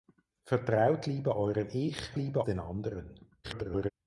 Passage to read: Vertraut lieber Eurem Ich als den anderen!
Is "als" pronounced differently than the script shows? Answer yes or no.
yes